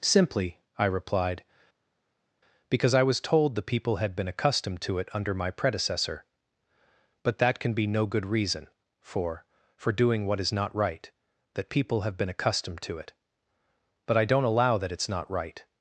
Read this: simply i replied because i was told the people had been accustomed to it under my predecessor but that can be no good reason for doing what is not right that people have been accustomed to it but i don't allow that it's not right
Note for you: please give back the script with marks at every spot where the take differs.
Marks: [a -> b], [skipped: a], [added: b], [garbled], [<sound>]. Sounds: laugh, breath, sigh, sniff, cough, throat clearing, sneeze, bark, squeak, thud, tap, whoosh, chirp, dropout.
simply i replied because i was told the people had been accustomed to it under my predecessor but that can be no good reason for [added: for] doing what is not right that people have been accustomed to it but i don't allow that it's not right